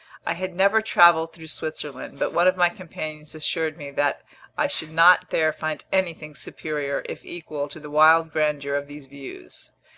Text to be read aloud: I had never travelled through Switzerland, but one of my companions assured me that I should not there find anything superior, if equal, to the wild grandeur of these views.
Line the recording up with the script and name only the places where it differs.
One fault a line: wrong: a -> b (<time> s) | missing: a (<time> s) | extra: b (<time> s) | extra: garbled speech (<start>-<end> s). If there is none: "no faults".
no faults